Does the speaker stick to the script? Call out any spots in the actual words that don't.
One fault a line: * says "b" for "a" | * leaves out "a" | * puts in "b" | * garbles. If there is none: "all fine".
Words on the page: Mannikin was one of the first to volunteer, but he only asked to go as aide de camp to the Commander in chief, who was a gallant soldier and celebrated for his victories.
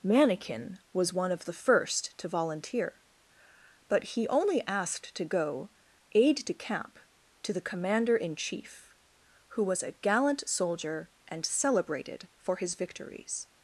* leaves out "as"